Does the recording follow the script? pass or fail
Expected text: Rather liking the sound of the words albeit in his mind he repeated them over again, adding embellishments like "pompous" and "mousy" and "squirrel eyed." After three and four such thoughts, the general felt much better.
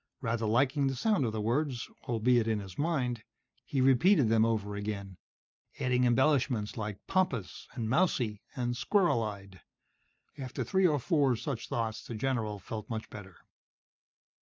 fail